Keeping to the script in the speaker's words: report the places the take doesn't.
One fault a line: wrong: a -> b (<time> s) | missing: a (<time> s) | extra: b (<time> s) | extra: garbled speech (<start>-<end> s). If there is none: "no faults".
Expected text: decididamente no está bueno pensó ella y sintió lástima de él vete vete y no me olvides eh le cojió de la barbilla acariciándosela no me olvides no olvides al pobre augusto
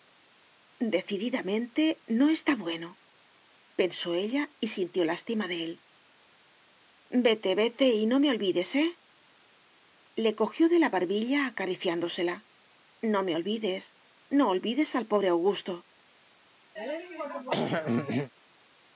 no faults